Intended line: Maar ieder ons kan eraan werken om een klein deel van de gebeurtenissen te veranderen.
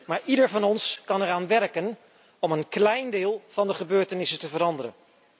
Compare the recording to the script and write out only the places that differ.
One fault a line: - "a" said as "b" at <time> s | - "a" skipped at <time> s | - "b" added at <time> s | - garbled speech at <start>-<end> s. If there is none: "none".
- "van" added at 0.5 s